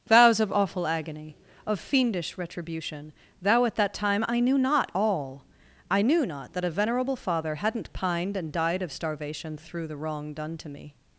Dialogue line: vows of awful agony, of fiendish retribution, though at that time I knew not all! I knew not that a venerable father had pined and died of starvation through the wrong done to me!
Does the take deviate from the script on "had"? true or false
true